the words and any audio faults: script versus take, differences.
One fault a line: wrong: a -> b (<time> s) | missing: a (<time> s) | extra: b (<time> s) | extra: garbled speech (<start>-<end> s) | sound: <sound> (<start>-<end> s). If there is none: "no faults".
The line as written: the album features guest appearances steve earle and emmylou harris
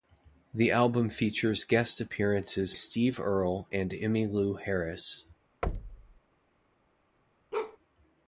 sound: thud (5.6-6.2 s)
sound: bark (7.5-7.8 s)